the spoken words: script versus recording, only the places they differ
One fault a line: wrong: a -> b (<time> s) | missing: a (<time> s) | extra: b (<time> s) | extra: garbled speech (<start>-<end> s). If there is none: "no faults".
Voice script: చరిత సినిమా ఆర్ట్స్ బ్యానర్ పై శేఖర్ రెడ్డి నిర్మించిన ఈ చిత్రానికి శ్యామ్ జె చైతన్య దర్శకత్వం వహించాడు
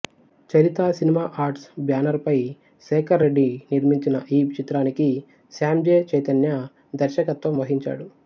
no faults